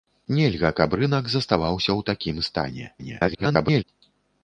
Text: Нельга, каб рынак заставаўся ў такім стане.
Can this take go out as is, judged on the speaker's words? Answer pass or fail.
fail